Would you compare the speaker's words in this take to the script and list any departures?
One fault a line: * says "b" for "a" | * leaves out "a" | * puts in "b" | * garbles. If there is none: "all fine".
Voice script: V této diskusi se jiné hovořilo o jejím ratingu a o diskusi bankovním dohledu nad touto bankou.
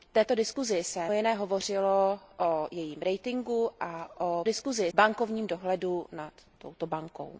all fine